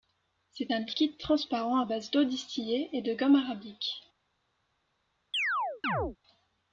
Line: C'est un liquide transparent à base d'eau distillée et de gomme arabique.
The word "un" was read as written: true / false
true